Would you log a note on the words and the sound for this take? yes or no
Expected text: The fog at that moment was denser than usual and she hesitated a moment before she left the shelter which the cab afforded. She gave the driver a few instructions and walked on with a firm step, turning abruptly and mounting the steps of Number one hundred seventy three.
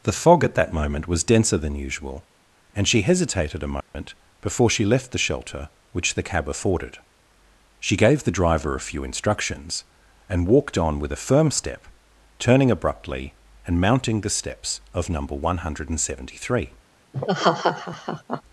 yes